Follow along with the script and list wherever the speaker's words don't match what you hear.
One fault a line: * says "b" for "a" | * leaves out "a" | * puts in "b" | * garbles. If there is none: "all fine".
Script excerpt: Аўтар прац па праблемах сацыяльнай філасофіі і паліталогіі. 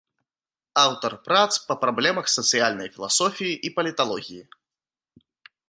all fine